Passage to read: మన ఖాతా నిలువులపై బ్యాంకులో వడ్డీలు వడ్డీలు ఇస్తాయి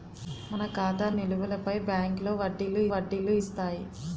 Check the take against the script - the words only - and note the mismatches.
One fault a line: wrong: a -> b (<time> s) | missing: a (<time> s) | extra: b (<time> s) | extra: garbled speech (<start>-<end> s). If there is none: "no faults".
no faults